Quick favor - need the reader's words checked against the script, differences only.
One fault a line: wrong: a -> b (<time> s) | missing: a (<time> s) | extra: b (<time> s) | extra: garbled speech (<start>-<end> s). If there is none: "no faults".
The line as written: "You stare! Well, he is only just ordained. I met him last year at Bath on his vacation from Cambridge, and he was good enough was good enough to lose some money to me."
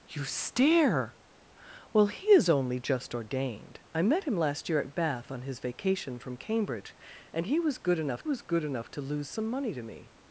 no faults